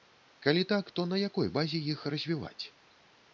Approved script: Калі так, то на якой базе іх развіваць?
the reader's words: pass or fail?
pass